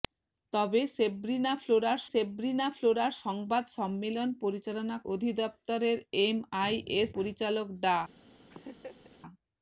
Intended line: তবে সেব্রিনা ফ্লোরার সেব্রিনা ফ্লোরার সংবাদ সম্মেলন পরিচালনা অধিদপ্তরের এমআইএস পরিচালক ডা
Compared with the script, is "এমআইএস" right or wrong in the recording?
right